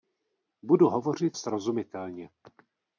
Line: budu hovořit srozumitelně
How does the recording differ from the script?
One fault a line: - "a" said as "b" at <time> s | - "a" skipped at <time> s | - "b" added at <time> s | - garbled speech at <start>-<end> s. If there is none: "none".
none